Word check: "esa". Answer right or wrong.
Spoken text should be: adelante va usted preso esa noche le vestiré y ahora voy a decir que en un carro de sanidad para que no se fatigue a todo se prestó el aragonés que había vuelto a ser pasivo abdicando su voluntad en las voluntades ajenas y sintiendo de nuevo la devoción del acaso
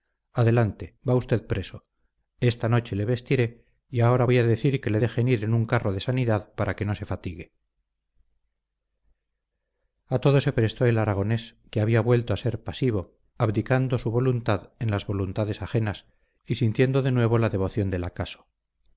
wrong